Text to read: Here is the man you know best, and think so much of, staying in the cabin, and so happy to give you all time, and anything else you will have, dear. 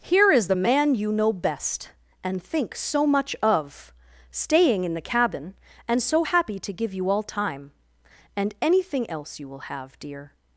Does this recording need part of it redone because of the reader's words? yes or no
no